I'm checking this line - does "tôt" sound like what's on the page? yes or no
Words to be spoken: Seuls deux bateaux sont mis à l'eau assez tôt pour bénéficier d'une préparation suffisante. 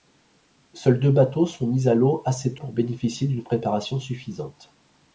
no